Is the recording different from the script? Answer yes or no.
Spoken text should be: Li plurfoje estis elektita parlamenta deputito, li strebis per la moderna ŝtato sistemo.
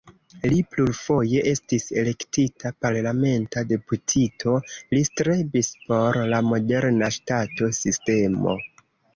yes